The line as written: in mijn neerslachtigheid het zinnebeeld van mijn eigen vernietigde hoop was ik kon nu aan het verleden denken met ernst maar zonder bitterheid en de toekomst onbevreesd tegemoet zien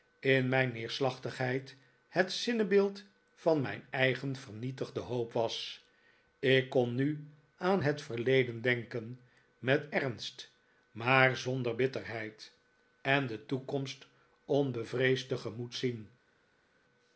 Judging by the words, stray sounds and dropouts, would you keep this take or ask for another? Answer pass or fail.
pass